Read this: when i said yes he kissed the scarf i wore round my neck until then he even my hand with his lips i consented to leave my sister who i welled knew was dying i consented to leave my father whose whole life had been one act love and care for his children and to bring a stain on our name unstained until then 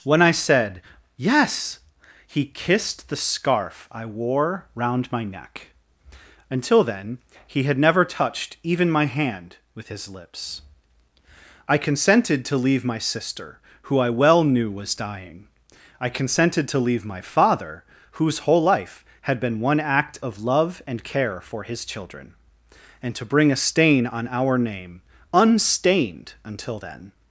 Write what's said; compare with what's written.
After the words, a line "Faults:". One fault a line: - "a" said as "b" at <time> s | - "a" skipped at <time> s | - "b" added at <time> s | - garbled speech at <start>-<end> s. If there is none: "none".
when i said yes he kissed the scarf i wore round my neck until then he had never touched even my hand with his lips i consented to leave my sister who i well knew was dying i consented to leave my father whose whole life had been one act of love and care for his children and to bring a stain on our name unstained until then
Faults:
- "had never touched" added at 7.6 s
- "welled" said as "well" at 14.1 s
- "of" added at 20.2 s